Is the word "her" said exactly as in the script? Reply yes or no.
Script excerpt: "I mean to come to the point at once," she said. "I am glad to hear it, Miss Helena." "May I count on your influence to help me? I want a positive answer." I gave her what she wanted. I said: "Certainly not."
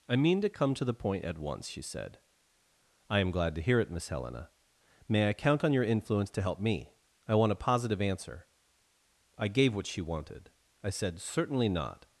no